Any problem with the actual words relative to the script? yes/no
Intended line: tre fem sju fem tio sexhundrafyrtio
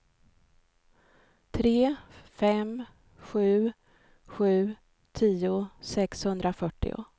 yes